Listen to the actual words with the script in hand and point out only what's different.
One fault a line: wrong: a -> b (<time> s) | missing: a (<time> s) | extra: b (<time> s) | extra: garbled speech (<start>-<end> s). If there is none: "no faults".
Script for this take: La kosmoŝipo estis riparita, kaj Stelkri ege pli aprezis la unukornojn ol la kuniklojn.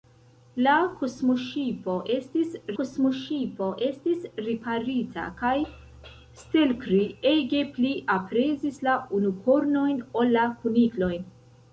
extra: kosmoŝipo estis (2.8 s)